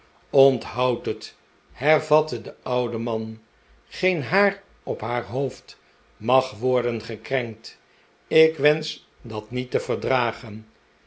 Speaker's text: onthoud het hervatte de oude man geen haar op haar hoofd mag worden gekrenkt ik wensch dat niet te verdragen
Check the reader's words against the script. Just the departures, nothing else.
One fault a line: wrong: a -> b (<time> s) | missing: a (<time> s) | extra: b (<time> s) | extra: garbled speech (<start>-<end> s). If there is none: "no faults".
no faults